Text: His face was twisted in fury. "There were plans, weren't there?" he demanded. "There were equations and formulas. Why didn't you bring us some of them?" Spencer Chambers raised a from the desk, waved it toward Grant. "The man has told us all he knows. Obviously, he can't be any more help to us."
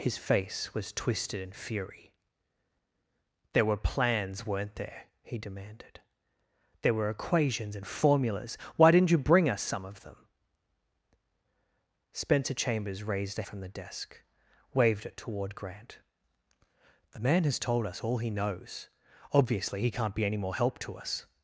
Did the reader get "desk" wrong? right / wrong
right